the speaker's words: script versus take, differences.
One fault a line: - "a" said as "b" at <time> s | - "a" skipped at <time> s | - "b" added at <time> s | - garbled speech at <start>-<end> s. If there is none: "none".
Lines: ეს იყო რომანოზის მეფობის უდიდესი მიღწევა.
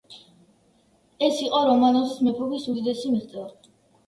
none